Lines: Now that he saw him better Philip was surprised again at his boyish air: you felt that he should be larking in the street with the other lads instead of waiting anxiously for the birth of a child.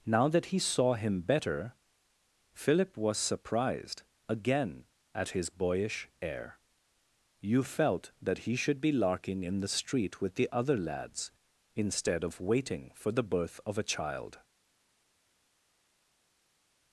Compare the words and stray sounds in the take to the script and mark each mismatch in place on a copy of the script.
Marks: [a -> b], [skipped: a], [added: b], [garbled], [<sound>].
Now that he saw him better Philip was surprised again at his boyish air: you felt that he should be larking in the street with the other lads instead of waiting [skipped: anxiously] for the birth of a child.